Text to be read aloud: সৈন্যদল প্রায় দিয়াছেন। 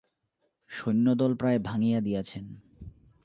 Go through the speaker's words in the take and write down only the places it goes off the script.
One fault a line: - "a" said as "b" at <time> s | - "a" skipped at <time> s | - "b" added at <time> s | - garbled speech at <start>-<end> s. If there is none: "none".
- "ভাঙিয়া" added at 1.6 s